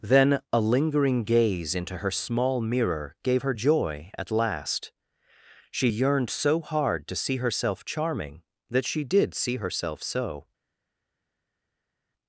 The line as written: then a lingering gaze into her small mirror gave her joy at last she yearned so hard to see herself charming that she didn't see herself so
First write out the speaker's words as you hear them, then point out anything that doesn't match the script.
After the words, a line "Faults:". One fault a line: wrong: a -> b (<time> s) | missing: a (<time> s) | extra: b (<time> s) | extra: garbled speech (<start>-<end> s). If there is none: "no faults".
then a lingering gaze into her small mirror gave her joy at last she yearned so hard to see herself charming that she did see herself so
Faults:
wrong: didn't -> did (9.0 s)